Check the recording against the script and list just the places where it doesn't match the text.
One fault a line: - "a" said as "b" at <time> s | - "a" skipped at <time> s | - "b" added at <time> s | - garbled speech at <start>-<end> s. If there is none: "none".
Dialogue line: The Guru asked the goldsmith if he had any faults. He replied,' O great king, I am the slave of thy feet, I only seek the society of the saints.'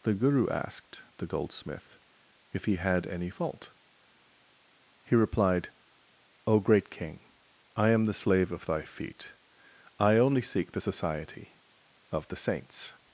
- "faults" said as "fault" at 3.3 s